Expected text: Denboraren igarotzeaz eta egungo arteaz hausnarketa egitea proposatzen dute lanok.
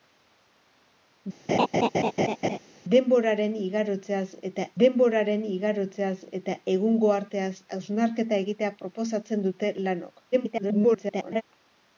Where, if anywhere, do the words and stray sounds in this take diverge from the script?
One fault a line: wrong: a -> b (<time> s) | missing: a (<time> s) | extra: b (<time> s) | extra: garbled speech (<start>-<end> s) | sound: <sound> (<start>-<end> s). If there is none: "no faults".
sound: laugh (1.5-2.6 s)
extra: denboraren igarotzeaz eta (4.8 s)
extra: garbled speech (10.3-11.4 s)